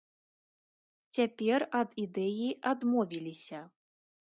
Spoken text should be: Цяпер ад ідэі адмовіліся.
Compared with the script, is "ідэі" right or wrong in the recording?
right